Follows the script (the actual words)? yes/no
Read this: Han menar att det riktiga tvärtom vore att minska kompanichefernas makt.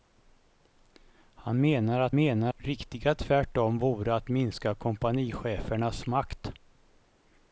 no